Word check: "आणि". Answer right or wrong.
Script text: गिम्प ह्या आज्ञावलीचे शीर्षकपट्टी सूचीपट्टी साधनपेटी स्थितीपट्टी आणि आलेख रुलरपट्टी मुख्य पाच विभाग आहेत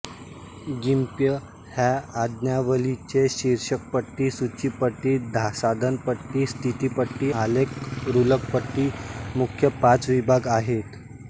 wrong